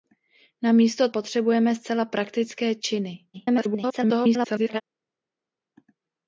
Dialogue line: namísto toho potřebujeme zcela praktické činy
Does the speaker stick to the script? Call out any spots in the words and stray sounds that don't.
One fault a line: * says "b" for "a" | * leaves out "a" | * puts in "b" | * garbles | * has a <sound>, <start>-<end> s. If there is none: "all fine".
* leaves out "toho"
* garbles